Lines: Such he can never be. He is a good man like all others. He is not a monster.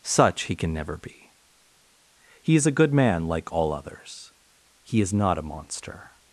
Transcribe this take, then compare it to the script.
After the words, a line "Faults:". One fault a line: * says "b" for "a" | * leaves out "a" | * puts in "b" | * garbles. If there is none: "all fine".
Such he can never be. He is a good man like all others. He is not a monster.
Faults:
all fine